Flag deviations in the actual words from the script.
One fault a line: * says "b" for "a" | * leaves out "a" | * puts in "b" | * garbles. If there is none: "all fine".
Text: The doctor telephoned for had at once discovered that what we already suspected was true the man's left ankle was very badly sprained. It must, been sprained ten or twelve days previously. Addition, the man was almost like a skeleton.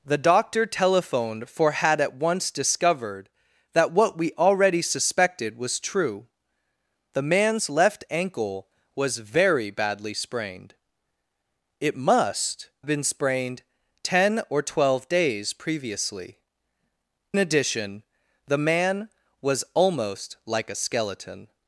all fine